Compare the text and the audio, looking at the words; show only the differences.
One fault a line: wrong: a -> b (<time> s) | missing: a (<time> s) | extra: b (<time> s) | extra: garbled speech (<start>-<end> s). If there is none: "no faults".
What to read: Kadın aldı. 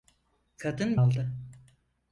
no faults